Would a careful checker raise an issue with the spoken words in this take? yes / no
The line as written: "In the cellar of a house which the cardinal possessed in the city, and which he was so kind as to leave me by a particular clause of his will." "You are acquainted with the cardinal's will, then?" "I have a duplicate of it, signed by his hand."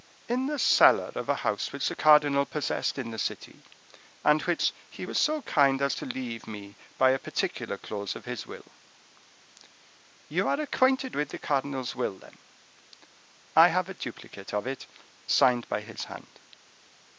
no